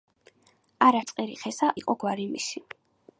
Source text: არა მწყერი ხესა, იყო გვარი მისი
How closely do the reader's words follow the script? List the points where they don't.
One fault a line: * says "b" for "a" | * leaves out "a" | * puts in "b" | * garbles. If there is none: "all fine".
all fine